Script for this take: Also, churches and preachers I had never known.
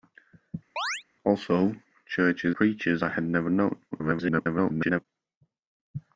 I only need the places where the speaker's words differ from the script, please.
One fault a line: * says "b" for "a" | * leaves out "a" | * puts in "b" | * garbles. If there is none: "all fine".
* leaves out "and"
* garbles